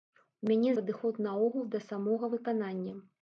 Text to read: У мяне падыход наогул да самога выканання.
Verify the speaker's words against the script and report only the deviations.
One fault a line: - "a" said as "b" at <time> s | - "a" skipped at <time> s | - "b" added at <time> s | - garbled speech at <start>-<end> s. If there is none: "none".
none